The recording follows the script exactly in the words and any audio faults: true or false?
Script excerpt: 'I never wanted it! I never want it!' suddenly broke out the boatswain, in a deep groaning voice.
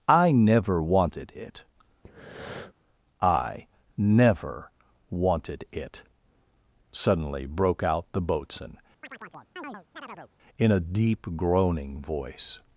false